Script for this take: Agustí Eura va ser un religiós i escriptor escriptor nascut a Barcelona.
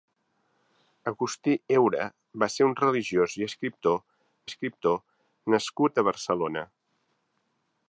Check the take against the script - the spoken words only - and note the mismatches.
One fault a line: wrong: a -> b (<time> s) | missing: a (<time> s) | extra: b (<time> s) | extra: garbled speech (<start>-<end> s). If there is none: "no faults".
no faults